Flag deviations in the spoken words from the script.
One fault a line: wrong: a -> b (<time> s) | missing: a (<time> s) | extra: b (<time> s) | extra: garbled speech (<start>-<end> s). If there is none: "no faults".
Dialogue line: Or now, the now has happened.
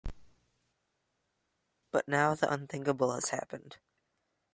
wrong: Or -> But (1.9 s)
wrong: now -> unthinkable (2.5 s)